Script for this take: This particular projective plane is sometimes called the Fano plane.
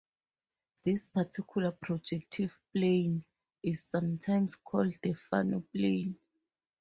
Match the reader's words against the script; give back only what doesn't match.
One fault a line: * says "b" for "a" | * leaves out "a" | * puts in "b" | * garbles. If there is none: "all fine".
all fine